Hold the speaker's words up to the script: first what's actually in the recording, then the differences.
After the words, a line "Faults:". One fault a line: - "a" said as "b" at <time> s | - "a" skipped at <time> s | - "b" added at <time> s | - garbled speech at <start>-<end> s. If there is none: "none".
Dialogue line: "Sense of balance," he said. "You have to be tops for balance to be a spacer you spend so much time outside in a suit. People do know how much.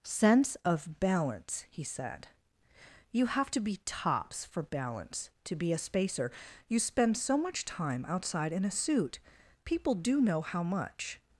"Sense of balance," he said. "You have to be tops for balance to be a spacer you spend so much time outside in a suit. People do know how much.
Faults:
none